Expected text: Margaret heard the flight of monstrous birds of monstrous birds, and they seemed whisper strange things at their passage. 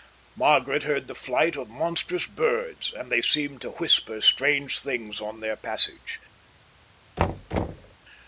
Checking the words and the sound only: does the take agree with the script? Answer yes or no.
no